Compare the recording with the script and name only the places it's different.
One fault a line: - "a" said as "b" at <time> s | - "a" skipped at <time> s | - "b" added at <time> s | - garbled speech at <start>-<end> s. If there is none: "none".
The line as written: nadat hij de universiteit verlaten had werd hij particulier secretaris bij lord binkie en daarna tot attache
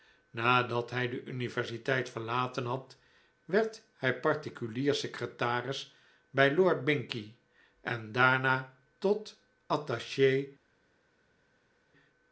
none